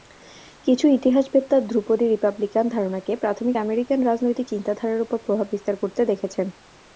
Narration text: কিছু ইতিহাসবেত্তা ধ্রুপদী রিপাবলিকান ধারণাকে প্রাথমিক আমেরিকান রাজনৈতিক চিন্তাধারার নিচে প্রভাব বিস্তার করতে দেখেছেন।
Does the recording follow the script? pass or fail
fail